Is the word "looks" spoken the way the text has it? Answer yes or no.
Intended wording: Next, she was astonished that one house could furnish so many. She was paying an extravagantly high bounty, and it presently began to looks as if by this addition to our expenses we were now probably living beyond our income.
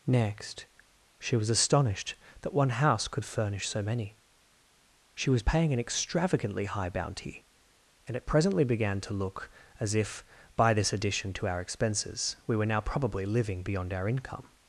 no